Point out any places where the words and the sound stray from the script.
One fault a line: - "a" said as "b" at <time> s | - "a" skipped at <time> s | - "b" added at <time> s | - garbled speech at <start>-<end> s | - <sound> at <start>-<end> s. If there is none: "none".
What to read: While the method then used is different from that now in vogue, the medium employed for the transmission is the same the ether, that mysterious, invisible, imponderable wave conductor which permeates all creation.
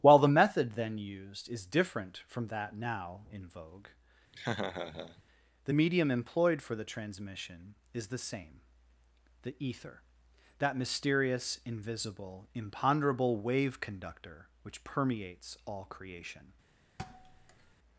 - laugh at 4.3-5.2 s
- thud at 17.0-17.7 s